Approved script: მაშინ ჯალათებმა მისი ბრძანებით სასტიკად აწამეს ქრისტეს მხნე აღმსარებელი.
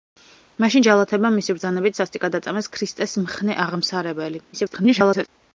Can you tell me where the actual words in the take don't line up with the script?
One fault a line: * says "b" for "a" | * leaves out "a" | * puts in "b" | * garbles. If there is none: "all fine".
* garbles